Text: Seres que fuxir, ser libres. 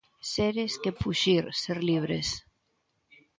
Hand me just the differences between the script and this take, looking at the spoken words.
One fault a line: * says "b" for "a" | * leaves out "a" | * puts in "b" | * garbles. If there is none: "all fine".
all fine